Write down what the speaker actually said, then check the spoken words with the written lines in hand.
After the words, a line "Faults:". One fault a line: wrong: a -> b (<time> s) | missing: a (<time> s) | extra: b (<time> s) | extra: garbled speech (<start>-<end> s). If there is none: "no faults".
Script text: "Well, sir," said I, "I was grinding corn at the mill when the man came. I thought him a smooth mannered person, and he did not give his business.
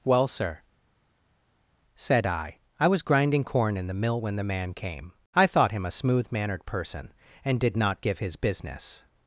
"Well, sir," said I, "I was grinding corn in the mill when the man came. I thought him a smooth mannered person, and did not give his business.
Faults:
wrong: at -> in (3.8 s)
missing: he (7.6 s)